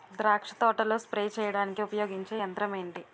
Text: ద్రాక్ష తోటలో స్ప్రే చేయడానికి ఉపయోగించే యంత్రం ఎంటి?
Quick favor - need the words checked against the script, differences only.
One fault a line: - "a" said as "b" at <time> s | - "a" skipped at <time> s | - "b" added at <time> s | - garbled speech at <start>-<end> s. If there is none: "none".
none